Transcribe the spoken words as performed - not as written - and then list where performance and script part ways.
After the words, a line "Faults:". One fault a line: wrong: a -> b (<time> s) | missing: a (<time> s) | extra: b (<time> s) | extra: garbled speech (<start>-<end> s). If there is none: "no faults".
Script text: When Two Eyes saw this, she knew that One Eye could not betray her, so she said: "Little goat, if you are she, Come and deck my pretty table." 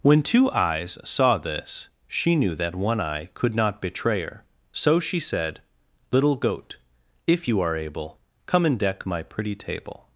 When Two Eyes saw this, she knew that One Eye could not betray her, so she said: "Little goat, if you are able, Come and deck my pretty table."
Faults:
wrong: she -> able (7.8 s)